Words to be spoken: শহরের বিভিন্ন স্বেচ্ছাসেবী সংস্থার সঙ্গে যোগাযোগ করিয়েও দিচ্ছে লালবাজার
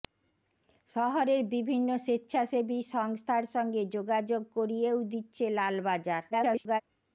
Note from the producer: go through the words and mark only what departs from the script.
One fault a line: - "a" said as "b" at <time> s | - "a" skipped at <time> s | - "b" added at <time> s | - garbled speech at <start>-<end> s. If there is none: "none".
- garbled speech at 6.3-6.8 s